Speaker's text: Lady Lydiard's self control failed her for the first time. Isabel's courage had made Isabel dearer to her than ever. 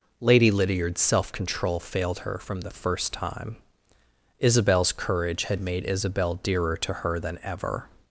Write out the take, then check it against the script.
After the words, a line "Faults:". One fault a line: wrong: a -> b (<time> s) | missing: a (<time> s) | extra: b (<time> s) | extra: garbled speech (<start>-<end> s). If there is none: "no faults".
Lady Lydiard's self control failed her from the first time. Isabel's courage had made Isabel dearer to her than ever.
Faults:
wrong: for -> from (2.4 s)